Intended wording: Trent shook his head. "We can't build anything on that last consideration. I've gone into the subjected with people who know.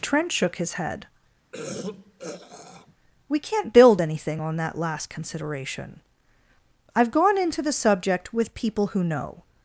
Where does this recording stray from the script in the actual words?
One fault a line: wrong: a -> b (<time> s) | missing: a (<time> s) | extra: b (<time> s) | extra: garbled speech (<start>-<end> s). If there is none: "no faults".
wrong: subjected -> subject (7.7 s)